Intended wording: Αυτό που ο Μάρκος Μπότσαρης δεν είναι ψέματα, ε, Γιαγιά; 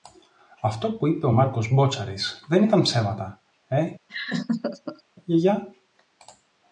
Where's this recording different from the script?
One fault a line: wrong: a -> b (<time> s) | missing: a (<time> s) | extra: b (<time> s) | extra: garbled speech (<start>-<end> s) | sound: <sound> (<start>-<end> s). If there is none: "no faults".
extra: είπε (1.1 s)
wrong: είναι -> ήταν (2.6 s)
sound: laugh (4.1-5.0 s)